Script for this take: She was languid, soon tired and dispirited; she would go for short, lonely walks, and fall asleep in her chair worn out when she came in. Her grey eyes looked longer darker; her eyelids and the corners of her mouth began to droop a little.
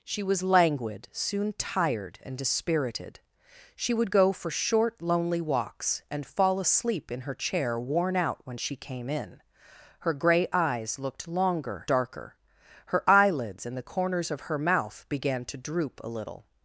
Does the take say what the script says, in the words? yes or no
yes